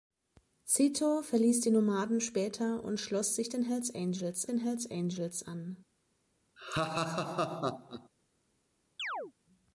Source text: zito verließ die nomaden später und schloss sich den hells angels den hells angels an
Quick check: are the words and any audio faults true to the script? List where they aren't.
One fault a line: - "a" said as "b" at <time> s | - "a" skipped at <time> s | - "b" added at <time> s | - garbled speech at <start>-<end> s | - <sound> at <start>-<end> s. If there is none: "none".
- laugh at 6.6-8.1 s
- chirp at 9.0-9.3 s